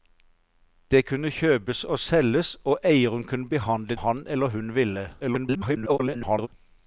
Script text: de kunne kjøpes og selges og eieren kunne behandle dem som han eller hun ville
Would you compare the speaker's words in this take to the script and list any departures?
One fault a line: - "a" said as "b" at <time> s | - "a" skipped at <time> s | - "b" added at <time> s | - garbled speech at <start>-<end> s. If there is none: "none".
- "dem som" skipped at 4.0 s
- garbled speech at 5.2-6.5 s